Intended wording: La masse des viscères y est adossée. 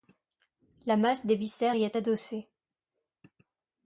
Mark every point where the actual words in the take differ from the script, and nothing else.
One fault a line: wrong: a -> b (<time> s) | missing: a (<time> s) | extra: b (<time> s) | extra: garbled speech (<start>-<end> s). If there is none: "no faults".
no faults